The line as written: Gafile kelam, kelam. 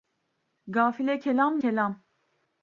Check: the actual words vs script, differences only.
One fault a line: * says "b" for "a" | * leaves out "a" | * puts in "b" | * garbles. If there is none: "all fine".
all fine